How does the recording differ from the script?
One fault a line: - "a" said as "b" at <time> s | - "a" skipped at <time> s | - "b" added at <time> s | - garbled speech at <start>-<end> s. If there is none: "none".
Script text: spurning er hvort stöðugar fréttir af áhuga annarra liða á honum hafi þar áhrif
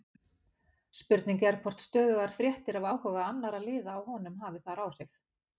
none